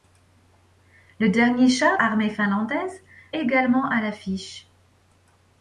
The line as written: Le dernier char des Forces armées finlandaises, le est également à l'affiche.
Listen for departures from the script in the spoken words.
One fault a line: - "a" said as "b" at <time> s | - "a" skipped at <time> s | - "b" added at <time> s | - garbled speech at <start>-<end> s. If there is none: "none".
- "des Forces" skipped at 2.0 s
- "le est" skipped at 3.0 s